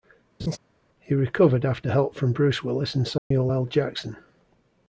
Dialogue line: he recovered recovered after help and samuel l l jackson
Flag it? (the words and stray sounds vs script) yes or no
yes